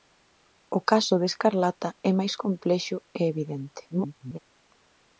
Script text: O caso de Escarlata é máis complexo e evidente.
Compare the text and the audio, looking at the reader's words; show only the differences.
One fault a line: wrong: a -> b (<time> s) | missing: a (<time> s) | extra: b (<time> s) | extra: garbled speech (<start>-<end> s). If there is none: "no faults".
extra: garbled speech (3.9-4.4 s)